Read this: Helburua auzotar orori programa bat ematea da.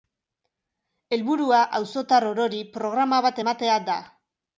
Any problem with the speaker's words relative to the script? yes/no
no